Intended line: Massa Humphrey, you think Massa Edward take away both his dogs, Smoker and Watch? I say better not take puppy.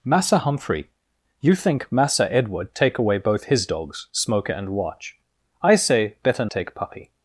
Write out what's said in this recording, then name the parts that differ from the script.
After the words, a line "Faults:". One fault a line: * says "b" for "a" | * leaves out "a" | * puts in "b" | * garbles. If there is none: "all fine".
Massa Humphrey, you think Massa Edward take away both his dogs, Smoker and Watch? I say better take puppy.
Faults:
* leaves out "not"